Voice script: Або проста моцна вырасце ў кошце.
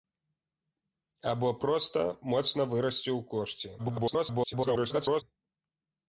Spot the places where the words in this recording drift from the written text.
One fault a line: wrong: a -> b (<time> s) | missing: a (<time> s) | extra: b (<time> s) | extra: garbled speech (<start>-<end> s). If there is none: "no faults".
extra: garbled speech (3.8-5.2 s)